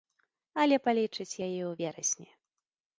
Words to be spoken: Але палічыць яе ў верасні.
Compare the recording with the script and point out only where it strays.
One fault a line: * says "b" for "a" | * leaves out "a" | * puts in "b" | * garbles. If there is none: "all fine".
all fine